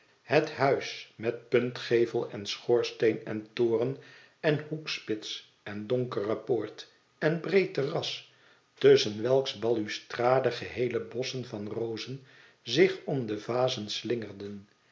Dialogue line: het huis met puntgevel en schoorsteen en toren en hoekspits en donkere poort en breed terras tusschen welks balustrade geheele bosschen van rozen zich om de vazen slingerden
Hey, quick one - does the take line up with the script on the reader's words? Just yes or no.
yes